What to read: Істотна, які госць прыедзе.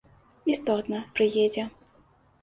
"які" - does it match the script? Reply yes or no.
no